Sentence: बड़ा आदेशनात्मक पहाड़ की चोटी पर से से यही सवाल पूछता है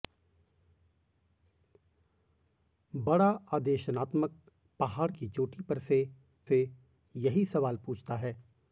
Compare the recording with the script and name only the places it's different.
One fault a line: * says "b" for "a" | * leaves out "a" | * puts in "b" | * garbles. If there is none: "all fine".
all fine